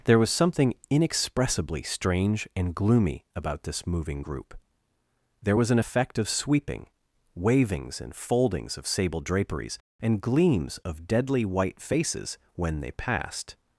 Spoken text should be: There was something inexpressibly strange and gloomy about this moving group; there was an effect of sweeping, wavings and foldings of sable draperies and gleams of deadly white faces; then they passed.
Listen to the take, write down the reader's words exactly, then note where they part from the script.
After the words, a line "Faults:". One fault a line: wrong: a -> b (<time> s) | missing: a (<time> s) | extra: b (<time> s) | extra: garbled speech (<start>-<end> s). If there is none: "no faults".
There was something inexpressibly strange and gloomy about this moving group; there was an effect of sweeping, wavings and foldings of sable draperies and gleams of deadly white faces; when they passed.
Faults:
wrong: then -> when (12.5 s)